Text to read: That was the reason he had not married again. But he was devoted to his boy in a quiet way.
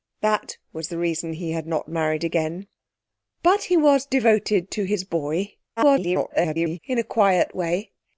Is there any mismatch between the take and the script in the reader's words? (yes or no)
yes